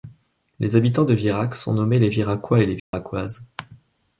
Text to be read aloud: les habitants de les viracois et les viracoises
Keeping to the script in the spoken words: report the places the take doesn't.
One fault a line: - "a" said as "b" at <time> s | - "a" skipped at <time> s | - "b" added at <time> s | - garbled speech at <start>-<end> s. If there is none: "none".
- "virac sont nommés" added at 1.1 s